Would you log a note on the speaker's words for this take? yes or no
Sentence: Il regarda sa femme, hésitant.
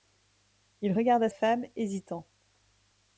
yes